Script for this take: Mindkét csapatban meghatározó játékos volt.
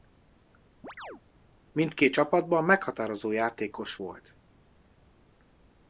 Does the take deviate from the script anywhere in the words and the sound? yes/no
yes